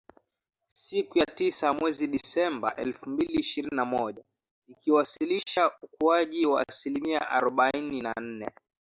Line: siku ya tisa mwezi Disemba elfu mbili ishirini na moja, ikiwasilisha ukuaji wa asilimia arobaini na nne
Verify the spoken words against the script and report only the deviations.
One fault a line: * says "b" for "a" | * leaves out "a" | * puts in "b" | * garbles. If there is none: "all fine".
all fine